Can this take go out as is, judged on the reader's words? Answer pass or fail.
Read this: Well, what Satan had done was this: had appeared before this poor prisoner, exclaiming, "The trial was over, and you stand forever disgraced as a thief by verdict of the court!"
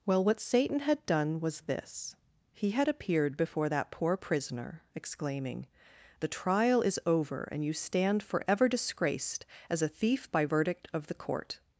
fail